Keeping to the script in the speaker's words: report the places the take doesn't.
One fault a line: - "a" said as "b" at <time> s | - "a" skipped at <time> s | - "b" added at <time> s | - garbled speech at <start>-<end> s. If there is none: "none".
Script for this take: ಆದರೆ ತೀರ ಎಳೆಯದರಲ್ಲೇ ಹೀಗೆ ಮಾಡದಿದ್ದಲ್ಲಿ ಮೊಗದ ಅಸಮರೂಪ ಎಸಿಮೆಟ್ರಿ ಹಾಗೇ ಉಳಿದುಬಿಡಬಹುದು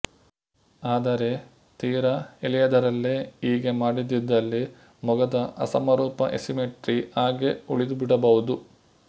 none